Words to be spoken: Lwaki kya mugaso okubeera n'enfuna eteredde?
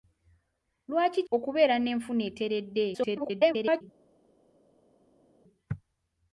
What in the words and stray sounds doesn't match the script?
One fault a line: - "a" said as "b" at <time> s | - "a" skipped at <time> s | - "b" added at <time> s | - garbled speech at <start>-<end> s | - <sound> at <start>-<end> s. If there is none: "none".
- "kya mugaso" skipped at 1.2 s
- garbled speech at 2.9-3.8 s